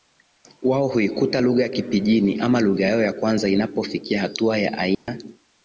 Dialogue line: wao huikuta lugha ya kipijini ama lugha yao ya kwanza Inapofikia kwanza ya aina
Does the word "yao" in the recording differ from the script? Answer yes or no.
no